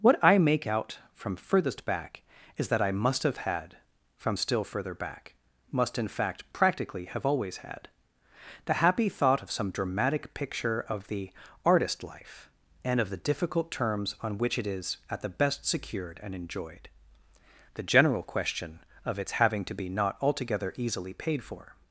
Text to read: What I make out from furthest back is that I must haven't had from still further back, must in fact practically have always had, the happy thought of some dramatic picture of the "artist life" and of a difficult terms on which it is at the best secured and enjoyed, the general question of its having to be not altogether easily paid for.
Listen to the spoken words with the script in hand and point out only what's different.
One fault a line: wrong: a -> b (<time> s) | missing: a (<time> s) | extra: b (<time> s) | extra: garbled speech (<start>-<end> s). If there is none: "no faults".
wrong: haven't -> have (3.2 s)
wrong: a -> the (13.1 s)